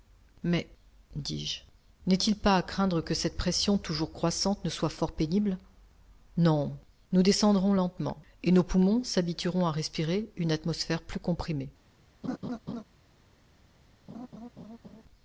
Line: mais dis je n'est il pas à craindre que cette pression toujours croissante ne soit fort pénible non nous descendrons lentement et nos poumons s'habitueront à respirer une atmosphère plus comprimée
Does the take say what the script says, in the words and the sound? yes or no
no